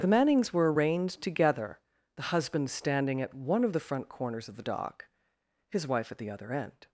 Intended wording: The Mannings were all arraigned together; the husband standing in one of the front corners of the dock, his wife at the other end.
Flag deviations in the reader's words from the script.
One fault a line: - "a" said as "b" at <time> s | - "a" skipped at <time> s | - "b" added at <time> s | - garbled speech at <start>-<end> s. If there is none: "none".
- "all" skipped at 0.7 s
- "in" said as "at" at 3.2 s